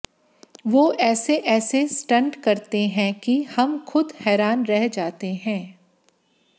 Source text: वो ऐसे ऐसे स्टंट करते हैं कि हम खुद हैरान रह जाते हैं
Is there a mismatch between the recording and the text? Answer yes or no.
no